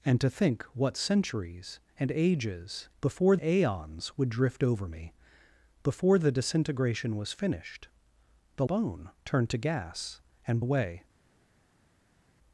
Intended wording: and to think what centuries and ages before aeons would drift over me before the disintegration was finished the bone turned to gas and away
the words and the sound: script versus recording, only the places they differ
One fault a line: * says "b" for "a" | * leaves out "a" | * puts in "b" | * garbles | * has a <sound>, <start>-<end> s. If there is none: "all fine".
all fine